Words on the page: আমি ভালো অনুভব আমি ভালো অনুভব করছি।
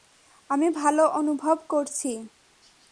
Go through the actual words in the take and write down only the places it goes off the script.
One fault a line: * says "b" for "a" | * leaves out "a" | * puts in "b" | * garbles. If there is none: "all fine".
* leaves out "আমি ভালো অনুভব"